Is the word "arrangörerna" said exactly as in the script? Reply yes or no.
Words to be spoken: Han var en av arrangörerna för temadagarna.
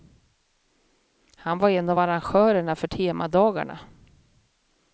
yes